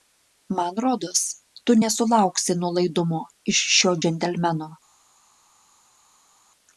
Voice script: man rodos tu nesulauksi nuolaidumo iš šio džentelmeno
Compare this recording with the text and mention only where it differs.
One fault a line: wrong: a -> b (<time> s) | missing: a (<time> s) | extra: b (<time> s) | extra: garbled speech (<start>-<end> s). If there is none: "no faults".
no faults